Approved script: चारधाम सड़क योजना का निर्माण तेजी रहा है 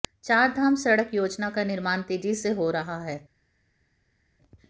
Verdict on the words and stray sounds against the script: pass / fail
fail